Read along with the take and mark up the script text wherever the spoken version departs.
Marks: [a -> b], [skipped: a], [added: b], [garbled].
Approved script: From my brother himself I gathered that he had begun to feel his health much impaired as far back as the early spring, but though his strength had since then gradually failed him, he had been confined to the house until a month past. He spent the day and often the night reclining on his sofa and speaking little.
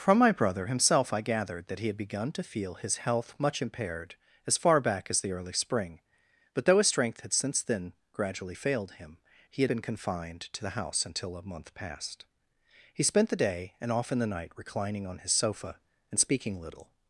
From my brother himself I gathered that he had begun to feel his health much impaired as far back as the early spring, but though his strength had since then gradually failed him, he had been confined to the house until a month past. He spent the day and often the night reclining on his sofa and speaking little.